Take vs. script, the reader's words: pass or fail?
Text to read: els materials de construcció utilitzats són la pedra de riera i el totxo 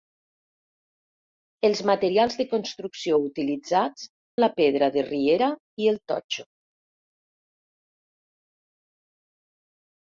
fail